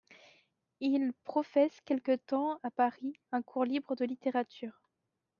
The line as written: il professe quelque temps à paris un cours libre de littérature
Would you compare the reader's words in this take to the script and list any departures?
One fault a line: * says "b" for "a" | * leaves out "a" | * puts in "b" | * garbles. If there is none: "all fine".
all fine